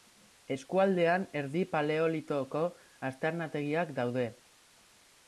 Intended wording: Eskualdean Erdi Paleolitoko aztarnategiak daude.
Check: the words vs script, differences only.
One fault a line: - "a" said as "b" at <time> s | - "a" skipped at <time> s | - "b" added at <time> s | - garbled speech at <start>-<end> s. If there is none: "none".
none